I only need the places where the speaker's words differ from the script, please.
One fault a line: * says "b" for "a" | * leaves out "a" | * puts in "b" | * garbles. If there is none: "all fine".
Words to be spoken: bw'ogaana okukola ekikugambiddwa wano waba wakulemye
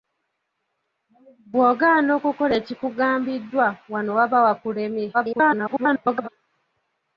* garbles